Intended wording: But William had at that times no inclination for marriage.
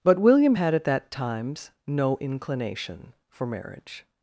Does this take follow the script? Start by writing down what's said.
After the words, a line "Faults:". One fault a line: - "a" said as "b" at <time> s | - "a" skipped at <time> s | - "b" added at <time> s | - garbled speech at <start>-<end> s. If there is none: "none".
But William had at that times no inclination for marriage.
Faults:
none